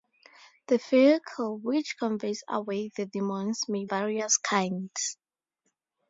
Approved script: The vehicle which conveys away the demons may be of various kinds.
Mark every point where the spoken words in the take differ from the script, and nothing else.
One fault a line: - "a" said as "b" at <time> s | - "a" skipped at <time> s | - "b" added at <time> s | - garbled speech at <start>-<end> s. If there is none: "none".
- "be of" skipped at 3.9 s